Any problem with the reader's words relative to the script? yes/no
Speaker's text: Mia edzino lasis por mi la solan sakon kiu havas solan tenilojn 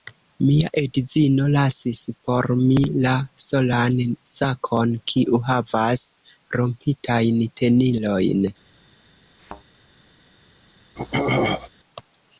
yes